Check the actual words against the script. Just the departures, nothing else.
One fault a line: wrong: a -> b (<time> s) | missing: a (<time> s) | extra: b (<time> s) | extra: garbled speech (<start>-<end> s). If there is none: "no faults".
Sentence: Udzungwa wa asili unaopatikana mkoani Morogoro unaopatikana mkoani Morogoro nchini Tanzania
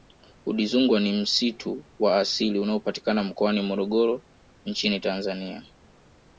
extra: ni msitu (1.0 s)
missing: unaopatikana mkoani Morogoro (4.2 s)